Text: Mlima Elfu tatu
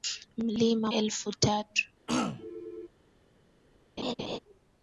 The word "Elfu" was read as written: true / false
true